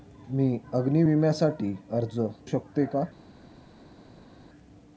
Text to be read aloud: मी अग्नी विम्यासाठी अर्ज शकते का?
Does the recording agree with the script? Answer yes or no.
yes